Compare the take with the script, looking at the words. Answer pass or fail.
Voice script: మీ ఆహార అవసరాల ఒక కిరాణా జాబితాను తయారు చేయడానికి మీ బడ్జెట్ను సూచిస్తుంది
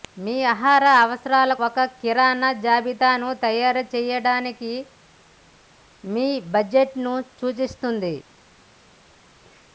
pass